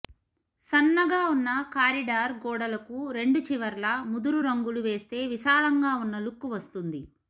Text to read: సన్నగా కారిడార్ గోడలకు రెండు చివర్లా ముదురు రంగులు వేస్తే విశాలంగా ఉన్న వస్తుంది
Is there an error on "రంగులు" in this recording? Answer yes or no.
no